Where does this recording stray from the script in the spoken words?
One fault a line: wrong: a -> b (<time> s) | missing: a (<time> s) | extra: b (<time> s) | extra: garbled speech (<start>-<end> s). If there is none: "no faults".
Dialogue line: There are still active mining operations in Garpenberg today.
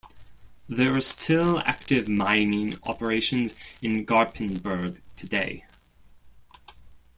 no faults